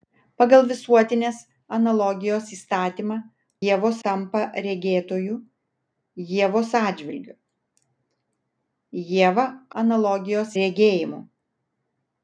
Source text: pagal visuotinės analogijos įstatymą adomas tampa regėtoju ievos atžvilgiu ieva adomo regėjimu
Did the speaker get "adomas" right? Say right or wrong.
wrong